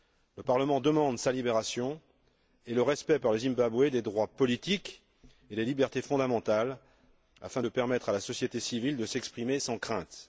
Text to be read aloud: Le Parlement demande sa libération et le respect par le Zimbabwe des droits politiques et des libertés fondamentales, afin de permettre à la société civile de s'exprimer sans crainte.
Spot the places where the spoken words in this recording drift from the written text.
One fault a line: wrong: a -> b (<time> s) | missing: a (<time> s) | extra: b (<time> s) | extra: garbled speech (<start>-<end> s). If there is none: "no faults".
no faults